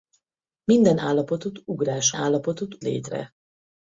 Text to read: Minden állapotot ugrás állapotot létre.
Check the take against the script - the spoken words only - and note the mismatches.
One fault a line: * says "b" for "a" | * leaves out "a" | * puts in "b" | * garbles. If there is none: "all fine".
all fine